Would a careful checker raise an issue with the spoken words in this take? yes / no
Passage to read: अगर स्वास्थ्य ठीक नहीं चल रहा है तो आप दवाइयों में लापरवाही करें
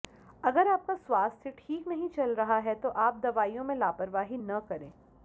yes